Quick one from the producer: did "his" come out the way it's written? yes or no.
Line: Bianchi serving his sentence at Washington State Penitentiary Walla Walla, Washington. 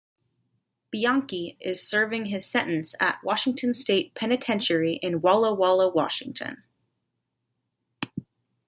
yes